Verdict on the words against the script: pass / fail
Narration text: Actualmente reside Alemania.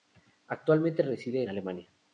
pass